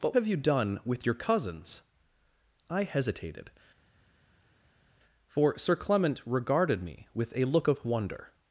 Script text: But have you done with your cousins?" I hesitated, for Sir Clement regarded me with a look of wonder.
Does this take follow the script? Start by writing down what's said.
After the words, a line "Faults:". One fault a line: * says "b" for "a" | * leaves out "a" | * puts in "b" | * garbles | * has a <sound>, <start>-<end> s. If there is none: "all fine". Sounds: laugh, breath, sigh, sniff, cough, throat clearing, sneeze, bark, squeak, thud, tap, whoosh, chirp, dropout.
But have you done with your cousins?" I hesitated, for Sir Clement regarded me with a look of wonder.
Faults:
all fine